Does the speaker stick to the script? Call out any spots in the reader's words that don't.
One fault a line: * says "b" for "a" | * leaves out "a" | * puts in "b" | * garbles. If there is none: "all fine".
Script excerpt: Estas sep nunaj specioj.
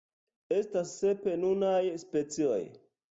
all fine